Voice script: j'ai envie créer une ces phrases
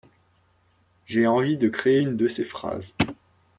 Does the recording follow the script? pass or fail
fail